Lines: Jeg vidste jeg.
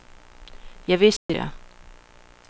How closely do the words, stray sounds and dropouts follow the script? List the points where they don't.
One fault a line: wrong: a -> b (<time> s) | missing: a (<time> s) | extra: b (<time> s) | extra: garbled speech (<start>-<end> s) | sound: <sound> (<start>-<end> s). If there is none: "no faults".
sound: dropout (1.2-1.3 s)